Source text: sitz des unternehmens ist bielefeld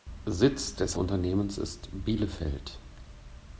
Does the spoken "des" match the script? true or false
true